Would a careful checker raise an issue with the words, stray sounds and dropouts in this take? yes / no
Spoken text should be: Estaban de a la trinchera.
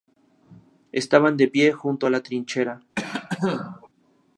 yes